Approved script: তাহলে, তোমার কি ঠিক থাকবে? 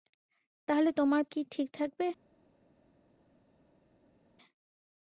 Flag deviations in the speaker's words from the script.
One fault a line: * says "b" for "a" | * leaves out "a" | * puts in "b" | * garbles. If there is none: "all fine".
all fine